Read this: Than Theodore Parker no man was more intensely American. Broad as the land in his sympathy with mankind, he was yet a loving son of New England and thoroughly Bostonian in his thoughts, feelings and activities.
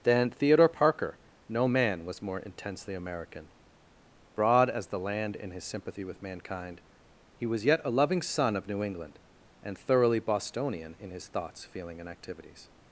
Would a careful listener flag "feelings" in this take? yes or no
yes